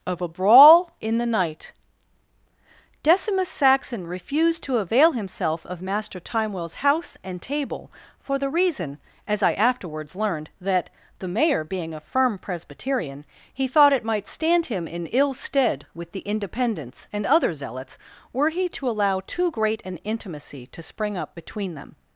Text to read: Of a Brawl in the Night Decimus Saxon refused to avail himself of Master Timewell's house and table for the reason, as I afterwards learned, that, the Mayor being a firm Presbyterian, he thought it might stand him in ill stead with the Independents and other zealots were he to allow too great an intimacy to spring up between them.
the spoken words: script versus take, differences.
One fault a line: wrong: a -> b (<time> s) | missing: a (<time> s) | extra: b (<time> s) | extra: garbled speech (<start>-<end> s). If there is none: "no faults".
no faults